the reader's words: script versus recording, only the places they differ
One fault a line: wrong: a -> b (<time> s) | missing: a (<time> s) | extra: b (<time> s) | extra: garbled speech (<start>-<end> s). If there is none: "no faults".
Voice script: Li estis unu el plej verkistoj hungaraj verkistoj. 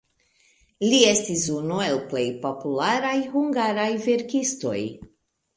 wrong: verkistoj -> popularaj (2.5 s)